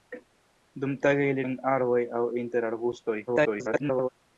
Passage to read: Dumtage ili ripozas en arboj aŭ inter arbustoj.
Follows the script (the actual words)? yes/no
no